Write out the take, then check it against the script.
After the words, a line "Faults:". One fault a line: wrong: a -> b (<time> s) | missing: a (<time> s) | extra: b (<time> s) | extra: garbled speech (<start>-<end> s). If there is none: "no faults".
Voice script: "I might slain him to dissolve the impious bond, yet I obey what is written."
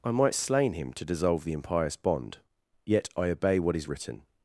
"I might slain him to dissolve the impious bond, yet I obey what is written."
Faults:
no faults